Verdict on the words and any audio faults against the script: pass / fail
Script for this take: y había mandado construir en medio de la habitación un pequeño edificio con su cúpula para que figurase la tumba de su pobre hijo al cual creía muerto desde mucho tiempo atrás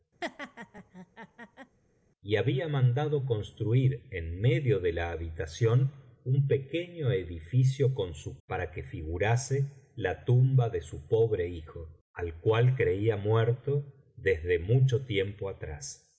fail